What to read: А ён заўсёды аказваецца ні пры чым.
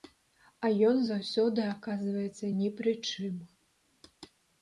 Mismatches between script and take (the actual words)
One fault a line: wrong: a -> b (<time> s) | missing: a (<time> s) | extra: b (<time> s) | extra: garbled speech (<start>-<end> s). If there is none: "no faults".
no faults